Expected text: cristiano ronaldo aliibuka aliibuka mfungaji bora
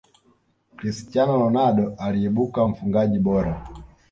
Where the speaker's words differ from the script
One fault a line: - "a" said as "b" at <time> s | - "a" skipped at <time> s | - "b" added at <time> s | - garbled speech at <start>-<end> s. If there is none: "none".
- "aliibuka" skipped at 2.7 s